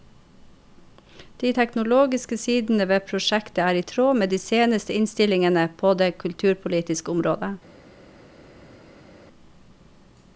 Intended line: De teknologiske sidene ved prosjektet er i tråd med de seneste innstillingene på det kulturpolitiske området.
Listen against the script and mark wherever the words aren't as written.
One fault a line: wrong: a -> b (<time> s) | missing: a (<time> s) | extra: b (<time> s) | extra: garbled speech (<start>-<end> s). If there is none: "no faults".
no faults